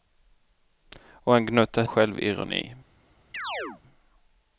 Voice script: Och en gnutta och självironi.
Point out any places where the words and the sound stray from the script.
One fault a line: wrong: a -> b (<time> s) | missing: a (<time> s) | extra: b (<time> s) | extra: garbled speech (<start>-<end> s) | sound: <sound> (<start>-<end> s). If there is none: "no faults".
sound: chirp (3.3-3.8 s)